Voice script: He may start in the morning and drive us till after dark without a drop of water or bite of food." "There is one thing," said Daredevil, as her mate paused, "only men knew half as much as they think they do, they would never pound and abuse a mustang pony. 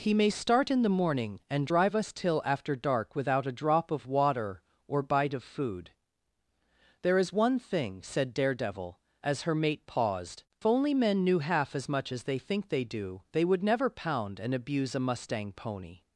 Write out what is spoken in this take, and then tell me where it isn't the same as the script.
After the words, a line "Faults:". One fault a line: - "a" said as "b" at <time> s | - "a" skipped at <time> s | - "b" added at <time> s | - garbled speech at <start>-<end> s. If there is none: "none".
He may start in the morning and drive us till after dark without a drop of water or bite of food." "There is one thing," said Daredevil, as her mate paused, "only men knew half as much as they think they do, they would never pound and abuse a mustang pony.
Faults:
none